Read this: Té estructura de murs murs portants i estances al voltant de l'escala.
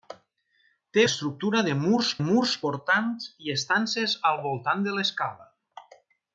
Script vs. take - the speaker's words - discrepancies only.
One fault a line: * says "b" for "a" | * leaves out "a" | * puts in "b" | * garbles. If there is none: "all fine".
all fine